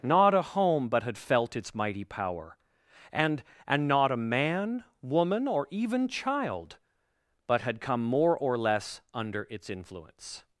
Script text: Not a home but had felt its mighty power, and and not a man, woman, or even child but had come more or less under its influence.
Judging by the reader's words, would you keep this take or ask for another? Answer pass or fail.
pass